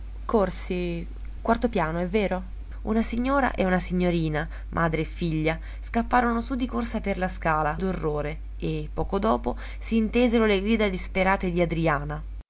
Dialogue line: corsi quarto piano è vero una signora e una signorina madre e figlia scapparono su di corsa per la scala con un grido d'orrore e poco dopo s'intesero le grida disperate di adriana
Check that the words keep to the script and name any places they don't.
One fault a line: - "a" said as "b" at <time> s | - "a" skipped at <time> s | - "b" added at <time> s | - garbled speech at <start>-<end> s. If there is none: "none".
- "con un grido" skipped at 7.8 s